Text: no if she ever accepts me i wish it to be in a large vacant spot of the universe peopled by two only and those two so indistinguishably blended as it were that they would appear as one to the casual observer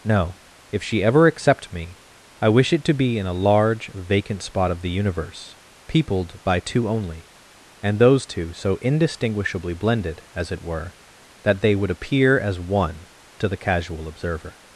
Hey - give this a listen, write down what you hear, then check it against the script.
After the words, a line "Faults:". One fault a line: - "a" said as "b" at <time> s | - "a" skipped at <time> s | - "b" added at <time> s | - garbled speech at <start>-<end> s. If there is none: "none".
no if she ever accept me i wish it to be in a large vacant spot of the universe peopled by two only and those two so indistinguishably blended as it were that they would appear as one to the casual observer
Faults:
- "accepts" said as "accept" at 1.3 s